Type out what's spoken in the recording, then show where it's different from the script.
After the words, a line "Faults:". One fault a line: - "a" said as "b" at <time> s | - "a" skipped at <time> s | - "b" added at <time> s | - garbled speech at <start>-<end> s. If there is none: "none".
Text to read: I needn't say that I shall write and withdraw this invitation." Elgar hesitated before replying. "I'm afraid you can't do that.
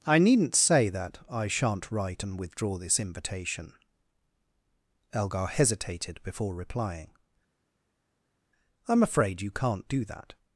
I needn't say that I shan't write and withdraw this invitation." Elgar hesitated before replying. "I'm afraid you can't do that.
Faults:
- "shall" said as "shan't" at 1.5 s